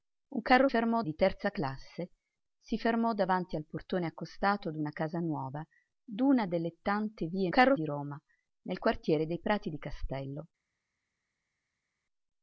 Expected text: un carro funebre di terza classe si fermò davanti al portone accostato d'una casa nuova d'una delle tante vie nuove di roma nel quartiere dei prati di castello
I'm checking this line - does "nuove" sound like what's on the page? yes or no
no